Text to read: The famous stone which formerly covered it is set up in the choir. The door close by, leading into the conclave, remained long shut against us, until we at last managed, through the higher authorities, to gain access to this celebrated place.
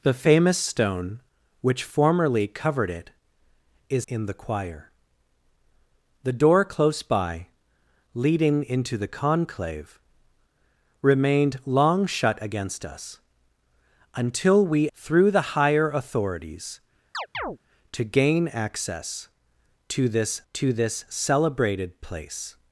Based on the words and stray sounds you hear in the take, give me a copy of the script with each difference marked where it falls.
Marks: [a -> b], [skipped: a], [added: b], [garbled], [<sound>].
The famous stone which formerly covered it is [skipped: set up] in the choir. The door close by, leading into the conclave, remained long shut against us, until we [skipped: at last managed,] through the higher authorities, [chirp] to gain access to this [added: to this] celebrated place.